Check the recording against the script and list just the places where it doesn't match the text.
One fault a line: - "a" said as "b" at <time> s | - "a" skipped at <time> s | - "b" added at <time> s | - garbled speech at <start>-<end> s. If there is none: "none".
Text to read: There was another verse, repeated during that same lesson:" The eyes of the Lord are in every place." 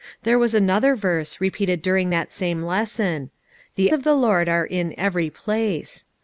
- "eyes" skipped at 3.9 s